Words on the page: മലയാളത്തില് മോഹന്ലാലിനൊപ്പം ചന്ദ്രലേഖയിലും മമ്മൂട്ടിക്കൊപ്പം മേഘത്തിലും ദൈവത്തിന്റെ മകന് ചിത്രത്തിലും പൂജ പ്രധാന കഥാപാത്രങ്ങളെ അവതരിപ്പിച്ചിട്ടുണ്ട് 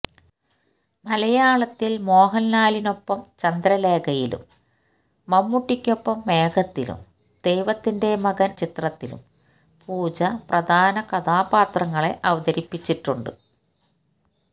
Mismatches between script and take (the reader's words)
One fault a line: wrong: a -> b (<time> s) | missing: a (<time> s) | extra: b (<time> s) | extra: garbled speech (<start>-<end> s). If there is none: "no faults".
no faults